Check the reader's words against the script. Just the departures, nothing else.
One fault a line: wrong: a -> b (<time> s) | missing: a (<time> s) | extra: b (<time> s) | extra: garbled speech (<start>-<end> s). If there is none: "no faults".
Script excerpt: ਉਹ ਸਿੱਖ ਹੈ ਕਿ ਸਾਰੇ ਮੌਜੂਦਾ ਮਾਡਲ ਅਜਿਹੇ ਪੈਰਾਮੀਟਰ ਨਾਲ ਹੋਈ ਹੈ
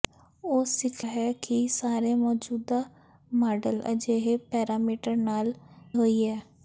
no faults